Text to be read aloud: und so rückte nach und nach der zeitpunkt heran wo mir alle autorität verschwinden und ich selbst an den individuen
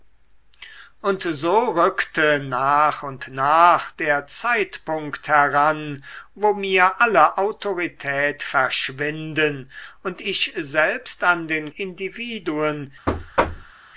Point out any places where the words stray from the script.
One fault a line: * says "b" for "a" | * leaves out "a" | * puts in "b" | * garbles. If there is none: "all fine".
all fine